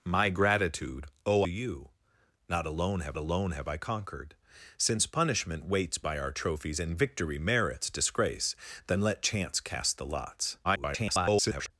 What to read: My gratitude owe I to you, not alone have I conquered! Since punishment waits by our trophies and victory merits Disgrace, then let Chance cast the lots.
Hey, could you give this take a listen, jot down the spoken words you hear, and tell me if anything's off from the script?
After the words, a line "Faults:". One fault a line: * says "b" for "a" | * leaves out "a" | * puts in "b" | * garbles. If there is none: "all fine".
My gratitude owe you, not alone have alone have I conquered! Since punishment waits by our trophies and victory merits Disgrace, then let Chance cast the lots. [garbled]
Faults:
* says "you not alone have" for "I to you not"
* garbles